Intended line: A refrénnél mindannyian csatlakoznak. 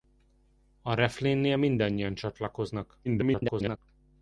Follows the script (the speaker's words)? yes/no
no